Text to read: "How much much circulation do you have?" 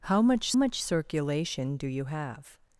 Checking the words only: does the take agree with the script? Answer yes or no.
yes